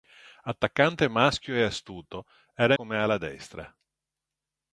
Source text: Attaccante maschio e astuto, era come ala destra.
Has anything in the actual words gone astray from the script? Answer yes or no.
no